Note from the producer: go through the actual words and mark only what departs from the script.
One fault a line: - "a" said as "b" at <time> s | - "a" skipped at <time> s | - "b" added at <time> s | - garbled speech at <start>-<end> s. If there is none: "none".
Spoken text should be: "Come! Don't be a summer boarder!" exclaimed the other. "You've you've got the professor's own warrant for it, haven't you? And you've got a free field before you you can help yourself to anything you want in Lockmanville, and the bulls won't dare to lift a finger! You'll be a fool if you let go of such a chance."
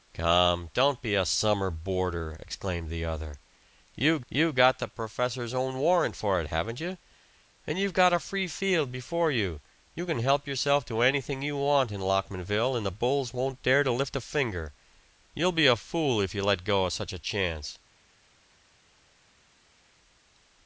none